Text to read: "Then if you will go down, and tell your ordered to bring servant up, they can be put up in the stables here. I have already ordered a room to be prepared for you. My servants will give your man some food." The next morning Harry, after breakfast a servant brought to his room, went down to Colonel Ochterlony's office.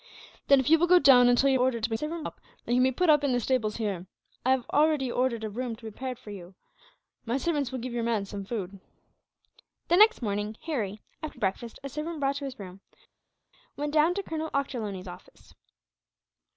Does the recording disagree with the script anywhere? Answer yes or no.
no